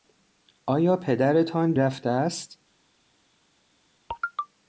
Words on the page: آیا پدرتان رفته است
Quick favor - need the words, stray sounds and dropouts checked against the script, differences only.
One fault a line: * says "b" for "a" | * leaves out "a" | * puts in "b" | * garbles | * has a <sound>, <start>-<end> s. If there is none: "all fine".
all fine